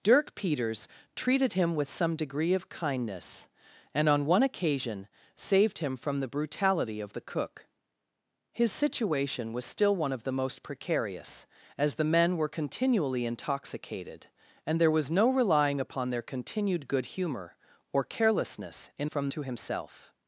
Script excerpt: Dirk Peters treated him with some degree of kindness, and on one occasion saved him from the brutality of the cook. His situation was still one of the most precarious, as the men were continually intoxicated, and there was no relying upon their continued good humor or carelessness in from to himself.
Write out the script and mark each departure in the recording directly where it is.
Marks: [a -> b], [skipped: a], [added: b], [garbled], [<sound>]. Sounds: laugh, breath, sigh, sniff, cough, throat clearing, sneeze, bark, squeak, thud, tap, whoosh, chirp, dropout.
Dirk Peters treated him with some degree of kindness, and on one occasion saved him from the brutality of the cook. His situation was still one of the most precarious, as the men were continually intoxicated, and there was no relying upon their continued good humor or carelessness in from to himself.